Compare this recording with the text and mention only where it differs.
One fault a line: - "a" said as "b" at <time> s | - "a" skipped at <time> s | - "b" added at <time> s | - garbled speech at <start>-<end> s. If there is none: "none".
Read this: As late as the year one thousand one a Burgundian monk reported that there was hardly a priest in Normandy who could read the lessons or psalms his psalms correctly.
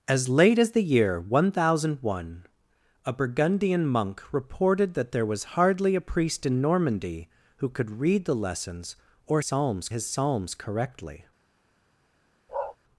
none